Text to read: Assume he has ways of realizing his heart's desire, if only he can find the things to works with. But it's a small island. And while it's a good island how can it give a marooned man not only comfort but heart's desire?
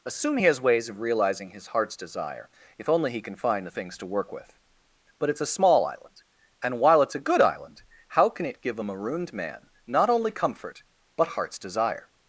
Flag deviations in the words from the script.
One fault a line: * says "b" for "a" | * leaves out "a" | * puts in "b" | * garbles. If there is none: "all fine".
* says "work" for "works"